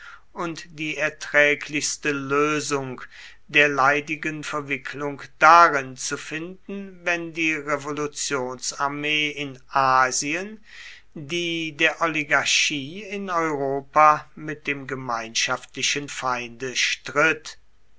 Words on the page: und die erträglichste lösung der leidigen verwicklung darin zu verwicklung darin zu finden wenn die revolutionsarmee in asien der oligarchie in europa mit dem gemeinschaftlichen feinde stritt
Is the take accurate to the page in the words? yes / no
no